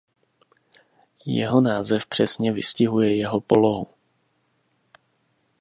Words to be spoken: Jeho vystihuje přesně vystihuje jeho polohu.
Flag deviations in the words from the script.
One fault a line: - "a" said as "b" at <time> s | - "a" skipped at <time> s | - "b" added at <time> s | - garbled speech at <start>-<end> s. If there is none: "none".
- "vystihuje" said as "název" at 1.6 s